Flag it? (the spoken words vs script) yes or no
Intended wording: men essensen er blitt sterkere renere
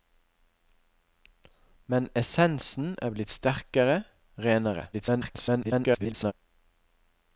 yes